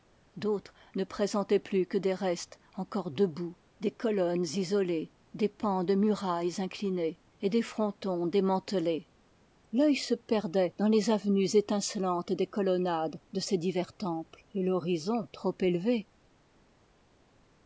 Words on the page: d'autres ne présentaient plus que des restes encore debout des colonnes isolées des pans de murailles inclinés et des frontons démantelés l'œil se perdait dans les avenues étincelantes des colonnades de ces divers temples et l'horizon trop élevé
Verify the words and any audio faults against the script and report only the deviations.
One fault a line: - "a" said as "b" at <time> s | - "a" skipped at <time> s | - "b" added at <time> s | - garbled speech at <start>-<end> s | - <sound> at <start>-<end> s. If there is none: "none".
none